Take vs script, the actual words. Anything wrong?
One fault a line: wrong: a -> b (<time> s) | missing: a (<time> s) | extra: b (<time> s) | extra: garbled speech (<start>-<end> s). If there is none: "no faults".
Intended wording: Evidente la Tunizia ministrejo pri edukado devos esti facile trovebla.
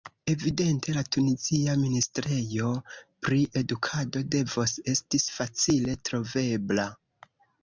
no faults